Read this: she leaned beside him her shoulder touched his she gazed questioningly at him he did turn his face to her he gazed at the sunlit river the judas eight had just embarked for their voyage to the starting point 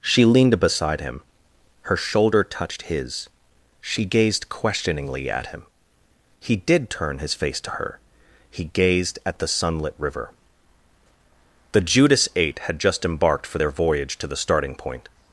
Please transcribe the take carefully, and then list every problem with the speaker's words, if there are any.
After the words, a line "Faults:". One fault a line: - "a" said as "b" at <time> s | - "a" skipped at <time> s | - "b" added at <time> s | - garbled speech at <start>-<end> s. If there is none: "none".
she leaned beside him her shoulder touched his she gazed questioningly at him he did turn his face to her he gazed at the sunlit river the judas eight had just embarked for their voyage to the starting point
Faults:
none